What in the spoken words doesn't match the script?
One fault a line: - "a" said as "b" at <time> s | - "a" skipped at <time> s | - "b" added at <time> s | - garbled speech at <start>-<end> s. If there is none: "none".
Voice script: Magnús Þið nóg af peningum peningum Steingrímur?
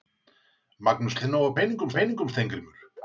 none